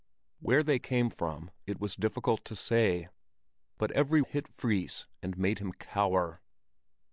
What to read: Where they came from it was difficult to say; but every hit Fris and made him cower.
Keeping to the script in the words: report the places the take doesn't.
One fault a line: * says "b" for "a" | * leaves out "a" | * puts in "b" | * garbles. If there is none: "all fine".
all fine